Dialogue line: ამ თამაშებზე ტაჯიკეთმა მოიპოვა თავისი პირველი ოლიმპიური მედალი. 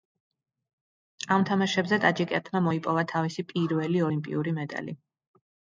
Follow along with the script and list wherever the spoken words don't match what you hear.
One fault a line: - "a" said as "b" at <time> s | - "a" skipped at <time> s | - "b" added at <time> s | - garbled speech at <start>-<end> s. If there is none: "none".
none